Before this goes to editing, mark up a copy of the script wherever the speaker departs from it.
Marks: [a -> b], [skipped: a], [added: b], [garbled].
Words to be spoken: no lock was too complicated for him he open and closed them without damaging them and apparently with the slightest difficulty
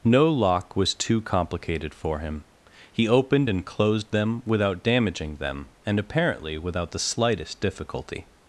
no lock was too complicated for him he [open -> opened] and closed them without damaging them and apparently [with -> without] the slightest difficulty